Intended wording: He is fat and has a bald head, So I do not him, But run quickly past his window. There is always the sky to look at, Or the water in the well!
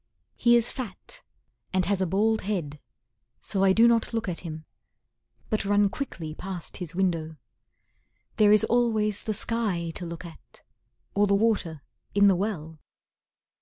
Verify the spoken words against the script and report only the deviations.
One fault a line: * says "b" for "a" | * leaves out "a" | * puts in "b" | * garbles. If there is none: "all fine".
* puts in "look at"